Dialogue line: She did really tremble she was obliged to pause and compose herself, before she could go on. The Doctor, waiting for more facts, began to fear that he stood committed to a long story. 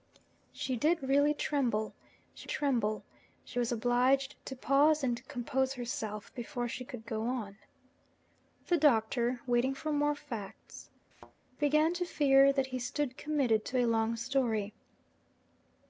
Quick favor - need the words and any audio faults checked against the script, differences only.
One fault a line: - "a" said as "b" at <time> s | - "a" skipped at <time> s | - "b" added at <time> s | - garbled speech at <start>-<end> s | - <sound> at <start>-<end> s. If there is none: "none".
- "tremble she" added at 2.4 s
- thud at 11.1-11.3 s